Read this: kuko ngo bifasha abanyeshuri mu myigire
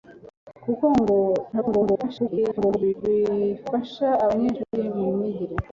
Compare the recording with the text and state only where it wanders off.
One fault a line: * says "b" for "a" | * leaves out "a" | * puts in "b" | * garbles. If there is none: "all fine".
* garbles